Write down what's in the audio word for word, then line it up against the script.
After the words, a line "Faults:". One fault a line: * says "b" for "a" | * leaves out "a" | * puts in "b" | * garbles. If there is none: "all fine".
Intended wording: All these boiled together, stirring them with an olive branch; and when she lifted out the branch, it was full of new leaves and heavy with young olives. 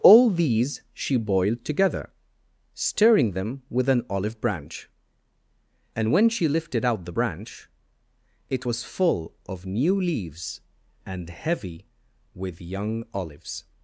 All these she boiled together, stirring them with an olive branch; and when she lifted out the branch, it was full of new leaves and heavy with young olives.
Faults:
* puts in "she"